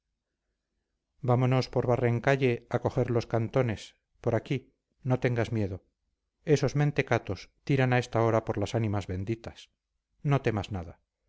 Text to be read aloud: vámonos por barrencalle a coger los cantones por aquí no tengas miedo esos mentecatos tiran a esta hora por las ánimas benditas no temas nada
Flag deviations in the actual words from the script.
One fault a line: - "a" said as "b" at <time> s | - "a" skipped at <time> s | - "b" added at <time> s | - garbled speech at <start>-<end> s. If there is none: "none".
none